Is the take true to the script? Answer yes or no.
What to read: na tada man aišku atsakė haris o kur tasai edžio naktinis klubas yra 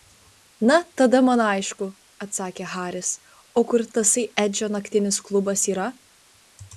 yes